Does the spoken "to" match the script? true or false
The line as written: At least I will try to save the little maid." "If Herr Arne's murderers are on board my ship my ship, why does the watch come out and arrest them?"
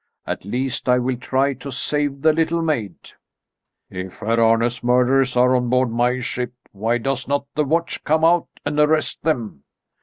true